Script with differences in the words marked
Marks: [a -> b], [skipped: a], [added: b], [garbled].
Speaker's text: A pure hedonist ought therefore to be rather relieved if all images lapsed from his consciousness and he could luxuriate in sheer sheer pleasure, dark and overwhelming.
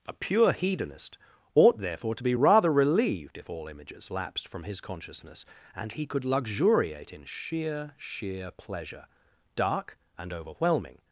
A pure hedonist ought therefore to be rather relieved if all images lapsed from his consciousness and he could luxuriate in sheer sheer pleasure, dark and overwhelming.